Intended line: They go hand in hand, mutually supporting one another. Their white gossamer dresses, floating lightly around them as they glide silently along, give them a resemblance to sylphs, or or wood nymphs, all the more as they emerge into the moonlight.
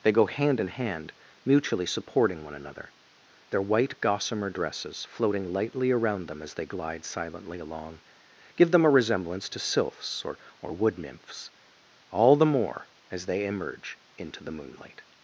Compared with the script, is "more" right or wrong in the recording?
right